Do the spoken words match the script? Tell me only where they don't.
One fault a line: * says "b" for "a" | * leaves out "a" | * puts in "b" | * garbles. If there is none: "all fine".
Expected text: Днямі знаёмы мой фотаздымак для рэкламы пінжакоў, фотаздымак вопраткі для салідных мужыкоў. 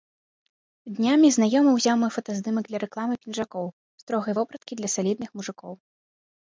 * puts in "ўзяў"
* says "строгай" for "фотаздымак"